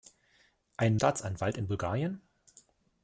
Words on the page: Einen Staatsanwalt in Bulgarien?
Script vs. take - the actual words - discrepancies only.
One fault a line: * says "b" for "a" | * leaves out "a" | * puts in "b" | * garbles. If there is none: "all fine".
all fine